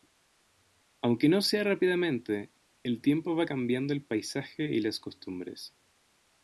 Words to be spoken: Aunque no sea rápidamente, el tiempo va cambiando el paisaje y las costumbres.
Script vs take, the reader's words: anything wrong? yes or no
no